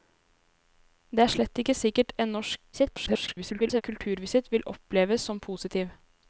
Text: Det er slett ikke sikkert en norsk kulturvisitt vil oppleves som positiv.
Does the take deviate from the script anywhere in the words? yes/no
yes